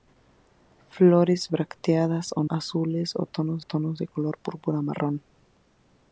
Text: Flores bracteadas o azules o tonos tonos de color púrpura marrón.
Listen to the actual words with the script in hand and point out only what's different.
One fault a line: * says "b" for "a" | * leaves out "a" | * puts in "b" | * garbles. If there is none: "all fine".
all fine